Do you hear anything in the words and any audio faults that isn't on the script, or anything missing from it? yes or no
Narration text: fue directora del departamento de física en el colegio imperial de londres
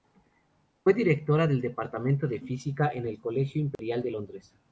yes